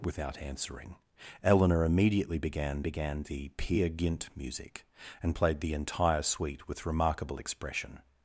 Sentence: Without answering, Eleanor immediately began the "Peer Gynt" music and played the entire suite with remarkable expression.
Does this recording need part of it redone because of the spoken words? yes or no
yes